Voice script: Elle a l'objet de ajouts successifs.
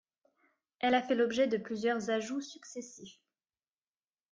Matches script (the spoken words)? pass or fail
fail